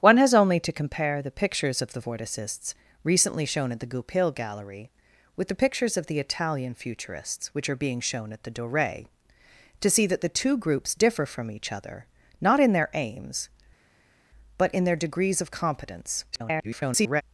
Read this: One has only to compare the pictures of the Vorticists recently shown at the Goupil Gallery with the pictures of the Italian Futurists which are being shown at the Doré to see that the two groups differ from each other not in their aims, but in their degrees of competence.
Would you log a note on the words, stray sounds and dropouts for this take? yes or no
yes